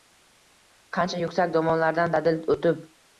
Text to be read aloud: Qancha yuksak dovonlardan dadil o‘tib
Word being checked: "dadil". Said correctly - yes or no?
yes